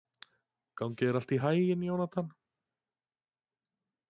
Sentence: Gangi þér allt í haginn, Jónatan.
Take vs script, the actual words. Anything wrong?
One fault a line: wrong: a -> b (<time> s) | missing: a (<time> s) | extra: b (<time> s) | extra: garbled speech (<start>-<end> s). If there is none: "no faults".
no faults